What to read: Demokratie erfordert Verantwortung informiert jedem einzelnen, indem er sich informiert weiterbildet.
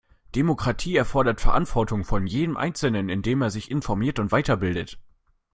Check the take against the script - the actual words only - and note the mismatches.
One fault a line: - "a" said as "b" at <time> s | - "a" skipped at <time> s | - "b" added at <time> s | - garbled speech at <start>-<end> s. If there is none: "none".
- "informiert" said as "von" at 2.0 s
- "und" added at 4.2 s